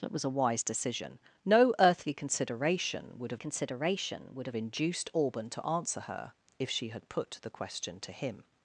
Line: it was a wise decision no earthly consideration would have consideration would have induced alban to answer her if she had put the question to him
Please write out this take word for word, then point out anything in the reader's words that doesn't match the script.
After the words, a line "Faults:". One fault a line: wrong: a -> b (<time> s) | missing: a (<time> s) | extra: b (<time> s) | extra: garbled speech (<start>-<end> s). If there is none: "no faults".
it was a wise decision no earthly consideration would have consideration would have induced alban to answer her if she had put the question to him
Faults:
no faults